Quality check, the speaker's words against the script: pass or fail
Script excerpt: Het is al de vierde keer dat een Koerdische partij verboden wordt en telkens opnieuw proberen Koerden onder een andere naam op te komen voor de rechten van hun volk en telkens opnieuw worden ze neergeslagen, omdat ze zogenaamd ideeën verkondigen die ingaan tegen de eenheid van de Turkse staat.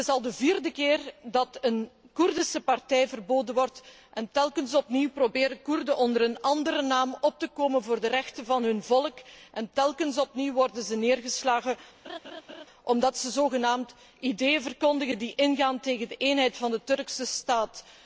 pass